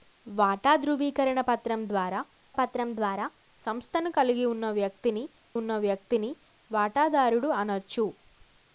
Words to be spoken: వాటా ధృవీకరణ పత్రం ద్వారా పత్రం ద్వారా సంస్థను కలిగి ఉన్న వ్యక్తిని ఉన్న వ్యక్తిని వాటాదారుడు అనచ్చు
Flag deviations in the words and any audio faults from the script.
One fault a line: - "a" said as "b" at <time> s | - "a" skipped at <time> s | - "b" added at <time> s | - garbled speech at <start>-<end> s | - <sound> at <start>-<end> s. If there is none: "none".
none